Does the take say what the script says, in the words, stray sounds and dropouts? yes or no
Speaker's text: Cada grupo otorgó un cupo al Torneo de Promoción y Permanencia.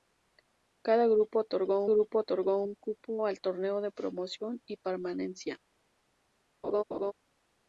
no